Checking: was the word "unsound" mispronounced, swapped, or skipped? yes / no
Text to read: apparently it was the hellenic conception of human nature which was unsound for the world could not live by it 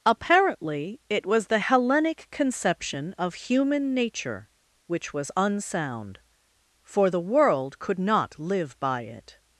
no